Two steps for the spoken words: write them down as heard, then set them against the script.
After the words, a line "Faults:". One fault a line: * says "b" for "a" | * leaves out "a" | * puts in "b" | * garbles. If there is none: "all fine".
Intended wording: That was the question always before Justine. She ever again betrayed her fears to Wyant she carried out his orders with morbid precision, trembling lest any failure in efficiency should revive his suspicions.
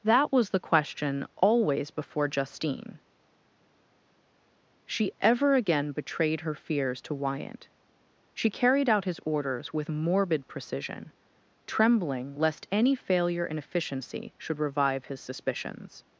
That was the question always before Justine. She ever again betrayed her fears to Wyant she carried out his orders with morbid precision, trembling lest any failure in efficiency should revive his suspicions.
Faults:
all fine